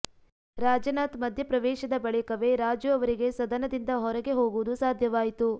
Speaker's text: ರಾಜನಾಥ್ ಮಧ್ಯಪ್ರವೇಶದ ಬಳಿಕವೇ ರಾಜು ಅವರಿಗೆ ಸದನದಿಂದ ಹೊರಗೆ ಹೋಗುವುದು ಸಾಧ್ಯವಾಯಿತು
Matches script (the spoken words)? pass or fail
pass